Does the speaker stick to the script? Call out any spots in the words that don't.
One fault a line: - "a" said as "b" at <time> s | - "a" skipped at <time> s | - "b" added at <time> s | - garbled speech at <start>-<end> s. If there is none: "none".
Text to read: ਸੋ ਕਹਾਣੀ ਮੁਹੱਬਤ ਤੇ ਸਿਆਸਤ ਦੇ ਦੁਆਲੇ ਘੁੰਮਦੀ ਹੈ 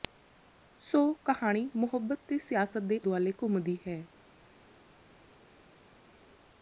none